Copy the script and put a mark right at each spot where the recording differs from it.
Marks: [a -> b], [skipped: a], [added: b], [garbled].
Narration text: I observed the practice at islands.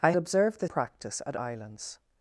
I observed the practice at islands.